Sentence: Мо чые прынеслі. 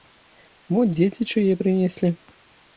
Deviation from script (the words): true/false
true